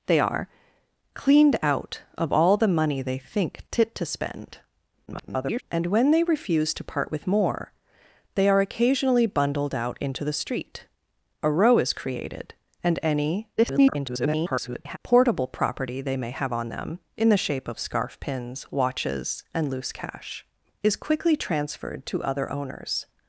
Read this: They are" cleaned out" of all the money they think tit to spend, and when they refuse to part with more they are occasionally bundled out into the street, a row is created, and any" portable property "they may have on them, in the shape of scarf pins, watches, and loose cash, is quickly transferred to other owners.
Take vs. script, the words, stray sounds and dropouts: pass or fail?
fail